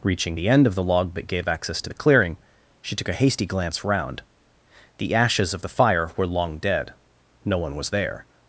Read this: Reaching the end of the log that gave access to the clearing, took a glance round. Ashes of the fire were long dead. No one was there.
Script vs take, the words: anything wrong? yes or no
yes